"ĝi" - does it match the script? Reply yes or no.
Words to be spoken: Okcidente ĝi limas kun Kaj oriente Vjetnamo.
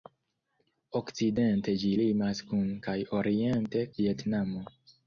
yes